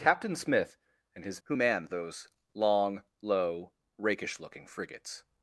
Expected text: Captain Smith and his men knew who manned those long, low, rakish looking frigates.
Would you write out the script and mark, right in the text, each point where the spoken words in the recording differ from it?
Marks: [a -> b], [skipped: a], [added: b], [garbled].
Captain Smith and his [skipped: men knew] who manned those long, low, rakish looking frigates.